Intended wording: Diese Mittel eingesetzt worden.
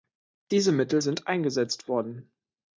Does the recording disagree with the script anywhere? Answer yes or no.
yes